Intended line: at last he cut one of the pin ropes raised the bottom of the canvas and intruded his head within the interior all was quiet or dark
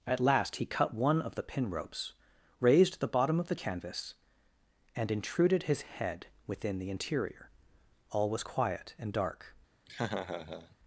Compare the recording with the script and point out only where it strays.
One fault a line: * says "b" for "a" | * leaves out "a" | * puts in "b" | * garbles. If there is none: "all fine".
* says "and" for "or"